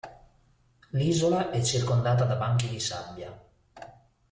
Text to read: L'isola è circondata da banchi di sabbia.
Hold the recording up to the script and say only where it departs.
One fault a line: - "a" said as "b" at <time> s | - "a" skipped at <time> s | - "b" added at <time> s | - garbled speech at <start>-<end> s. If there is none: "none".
none